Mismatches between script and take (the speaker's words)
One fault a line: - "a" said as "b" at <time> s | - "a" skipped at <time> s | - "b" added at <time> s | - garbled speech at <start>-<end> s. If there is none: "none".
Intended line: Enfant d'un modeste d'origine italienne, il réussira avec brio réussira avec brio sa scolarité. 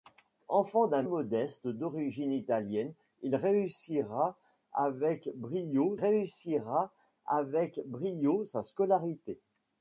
none